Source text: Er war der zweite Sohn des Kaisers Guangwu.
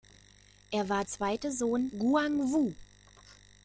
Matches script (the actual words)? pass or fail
fail